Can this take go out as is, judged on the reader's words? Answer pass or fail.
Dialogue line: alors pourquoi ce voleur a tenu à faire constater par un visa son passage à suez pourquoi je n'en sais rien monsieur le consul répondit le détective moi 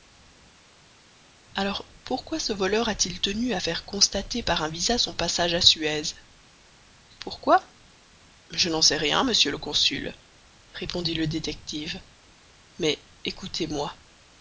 fail